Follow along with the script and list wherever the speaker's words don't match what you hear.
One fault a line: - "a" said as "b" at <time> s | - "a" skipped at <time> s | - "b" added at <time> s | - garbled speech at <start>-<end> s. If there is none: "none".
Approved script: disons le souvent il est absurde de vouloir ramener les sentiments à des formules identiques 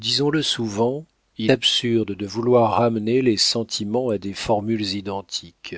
- "est" skipped at 1.5 s